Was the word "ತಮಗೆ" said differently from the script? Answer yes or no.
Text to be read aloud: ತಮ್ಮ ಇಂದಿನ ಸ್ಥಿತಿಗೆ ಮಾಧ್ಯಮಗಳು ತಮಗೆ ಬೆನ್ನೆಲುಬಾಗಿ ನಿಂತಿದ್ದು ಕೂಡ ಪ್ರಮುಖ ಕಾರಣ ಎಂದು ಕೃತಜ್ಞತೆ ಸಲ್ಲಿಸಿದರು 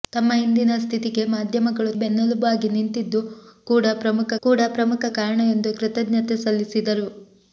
yes